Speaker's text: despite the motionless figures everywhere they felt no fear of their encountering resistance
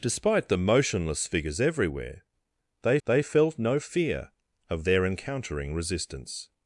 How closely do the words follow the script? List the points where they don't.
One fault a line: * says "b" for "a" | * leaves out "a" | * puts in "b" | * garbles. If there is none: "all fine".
* puts in "they"